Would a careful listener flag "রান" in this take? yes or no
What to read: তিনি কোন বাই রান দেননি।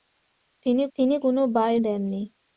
yes